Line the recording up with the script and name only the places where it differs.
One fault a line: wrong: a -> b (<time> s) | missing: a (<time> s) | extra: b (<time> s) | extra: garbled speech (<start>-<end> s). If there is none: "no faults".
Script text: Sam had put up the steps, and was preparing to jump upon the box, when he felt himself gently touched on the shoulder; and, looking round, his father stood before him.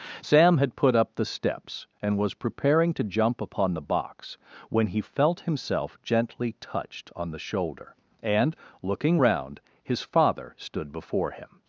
no faults